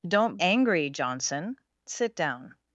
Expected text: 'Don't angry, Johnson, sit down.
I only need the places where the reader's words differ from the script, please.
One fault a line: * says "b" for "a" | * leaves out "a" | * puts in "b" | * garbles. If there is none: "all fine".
all fine